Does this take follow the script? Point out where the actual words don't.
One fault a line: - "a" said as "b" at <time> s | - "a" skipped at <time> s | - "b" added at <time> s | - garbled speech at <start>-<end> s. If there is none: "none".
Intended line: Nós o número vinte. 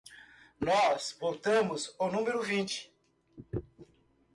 - "votamos" added at 1.2 s